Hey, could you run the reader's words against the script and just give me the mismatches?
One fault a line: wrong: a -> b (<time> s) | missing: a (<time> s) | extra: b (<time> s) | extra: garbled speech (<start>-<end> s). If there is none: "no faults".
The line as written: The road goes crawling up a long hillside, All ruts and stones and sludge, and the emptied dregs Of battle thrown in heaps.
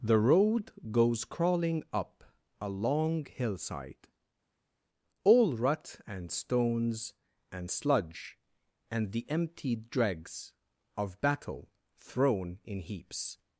wrong: ruts -> rut (5.6 s)